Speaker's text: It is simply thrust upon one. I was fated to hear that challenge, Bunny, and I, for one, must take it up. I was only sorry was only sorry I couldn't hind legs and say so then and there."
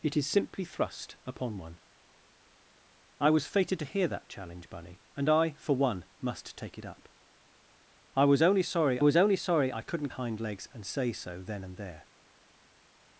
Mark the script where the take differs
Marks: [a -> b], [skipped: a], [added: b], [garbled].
It is simply thrust upon one. I was fated to hear that challenge, Bunny, and I, for one, must take it up. I was only sorry was only sorry I couldn't hind legs and say so then and there."